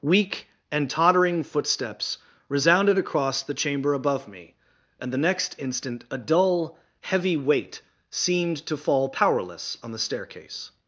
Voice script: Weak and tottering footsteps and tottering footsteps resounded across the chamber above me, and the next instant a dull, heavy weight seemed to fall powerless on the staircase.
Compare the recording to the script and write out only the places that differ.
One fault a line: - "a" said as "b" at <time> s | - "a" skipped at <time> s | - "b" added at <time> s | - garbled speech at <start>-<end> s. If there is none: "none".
- "and tottering footsteps" skipped at 2.2 s